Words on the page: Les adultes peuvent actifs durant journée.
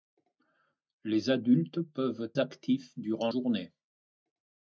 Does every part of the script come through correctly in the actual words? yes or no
yes